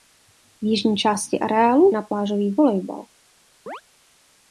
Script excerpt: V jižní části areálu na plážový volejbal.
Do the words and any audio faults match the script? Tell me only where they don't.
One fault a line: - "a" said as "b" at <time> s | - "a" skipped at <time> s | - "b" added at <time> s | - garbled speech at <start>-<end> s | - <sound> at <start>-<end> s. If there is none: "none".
- chirp at 3.7-3.8 s